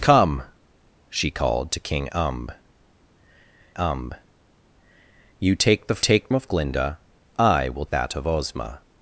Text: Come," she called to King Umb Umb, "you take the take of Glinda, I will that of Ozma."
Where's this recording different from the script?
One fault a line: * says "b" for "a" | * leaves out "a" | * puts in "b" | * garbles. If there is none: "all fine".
all fine